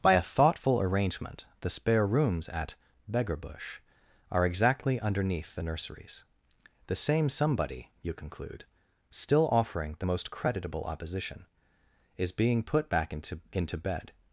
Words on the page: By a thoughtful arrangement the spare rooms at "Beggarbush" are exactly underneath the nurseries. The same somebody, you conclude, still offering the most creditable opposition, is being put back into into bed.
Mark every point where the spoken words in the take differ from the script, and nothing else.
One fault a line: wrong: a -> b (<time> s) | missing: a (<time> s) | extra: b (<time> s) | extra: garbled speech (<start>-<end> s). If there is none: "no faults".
no faults